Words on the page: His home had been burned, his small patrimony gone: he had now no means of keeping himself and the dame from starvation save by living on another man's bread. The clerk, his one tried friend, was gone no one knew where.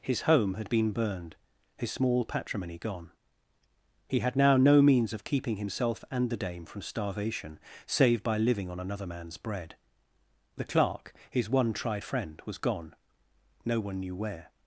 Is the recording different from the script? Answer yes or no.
no